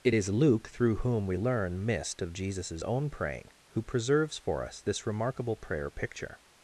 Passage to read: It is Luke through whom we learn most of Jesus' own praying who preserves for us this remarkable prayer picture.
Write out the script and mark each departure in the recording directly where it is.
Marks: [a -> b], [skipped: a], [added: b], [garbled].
It is Luke through whom we learn [most -> mist] of Jesus' own praying who preserves for us this remarkable prayer picture.